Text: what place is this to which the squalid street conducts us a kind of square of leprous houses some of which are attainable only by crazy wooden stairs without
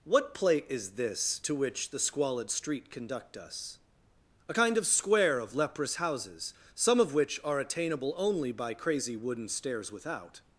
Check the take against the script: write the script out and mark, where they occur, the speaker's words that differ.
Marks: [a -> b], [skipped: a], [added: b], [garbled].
what [place -> plate] is this to which the squalid street [conducts -> conduct] us a kind of square of leprous houses some of which are attainable only by crazy wooden stairs without